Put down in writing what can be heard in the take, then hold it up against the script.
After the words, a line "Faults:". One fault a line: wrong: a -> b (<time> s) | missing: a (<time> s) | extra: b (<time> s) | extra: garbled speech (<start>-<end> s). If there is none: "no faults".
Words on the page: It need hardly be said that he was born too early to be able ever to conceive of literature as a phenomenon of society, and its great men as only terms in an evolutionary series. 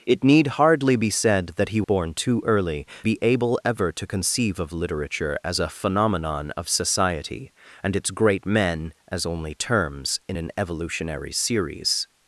It need hardly be said that he born too early be able ever to conceive of literature as a phenomenon of society, and its great men as only terms in an evolutionary series.
Faults:
missing: was (1.8 s)
missing: to (2.9 s)